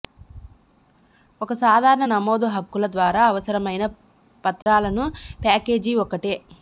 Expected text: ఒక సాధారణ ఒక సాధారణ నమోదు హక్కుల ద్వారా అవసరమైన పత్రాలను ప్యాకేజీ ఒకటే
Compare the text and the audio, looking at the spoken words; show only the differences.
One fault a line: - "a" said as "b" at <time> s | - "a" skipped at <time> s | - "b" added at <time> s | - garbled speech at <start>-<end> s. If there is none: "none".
- "ఒక సాధారణ" skipped at 2.0 s